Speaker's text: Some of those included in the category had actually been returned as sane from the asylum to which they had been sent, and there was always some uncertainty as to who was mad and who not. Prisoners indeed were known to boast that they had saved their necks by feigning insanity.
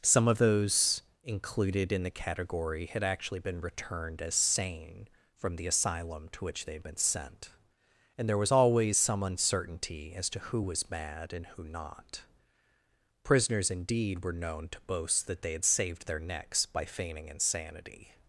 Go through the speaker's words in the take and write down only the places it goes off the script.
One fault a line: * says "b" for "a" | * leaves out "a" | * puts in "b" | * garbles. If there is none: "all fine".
all fine